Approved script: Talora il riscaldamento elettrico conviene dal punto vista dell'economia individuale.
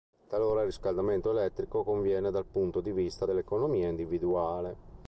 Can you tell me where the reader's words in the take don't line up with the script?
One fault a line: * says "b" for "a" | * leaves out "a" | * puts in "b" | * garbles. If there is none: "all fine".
* puts in "di"